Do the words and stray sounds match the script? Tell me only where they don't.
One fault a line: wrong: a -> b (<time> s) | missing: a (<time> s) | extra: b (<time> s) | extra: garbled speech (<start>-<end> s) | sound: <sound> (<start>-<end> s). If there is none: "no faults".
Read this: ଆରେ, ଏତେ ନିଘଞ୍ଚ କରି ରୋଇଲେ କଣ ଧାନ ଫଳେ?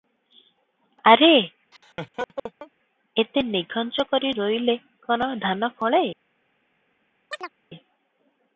sound: laugh (1.7-2.7 s)
sound: chirp (7.3-7.5 s)